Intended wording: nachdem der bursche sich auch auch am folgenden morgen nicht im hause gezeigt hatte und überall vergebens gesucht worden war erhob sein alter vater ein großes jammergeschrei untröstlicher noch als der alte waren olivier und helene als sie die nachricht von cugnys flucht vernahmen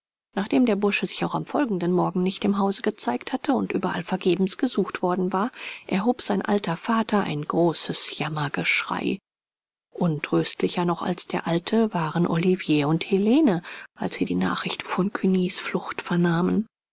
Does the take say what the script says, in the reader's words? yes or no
no